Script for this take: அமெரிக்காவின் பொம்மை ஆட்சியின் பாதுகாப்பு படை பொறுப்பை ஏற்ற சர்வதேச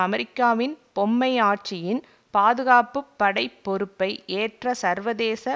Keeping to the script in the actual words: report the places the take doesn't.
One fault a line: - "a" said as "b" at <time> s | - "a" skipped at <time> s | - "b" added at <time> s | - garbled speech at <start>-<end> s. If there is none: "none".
none